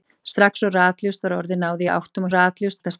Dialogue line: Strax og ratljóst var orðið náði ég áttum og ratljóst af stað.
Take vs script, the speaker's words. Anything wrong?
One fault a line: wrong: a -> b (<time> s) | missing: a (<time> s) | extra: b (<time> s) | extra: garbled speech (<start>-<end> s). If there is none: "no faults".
no faults